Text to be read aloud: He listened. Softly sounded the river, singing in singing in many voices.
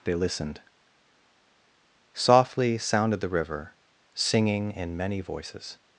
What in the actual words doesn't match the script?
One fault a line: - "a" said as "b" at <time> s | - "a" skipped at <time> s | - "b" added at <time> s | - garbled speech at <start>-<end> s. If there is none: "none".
- "He" said as "They" at 0.0 s
- "singing in" skipped at 5.0 s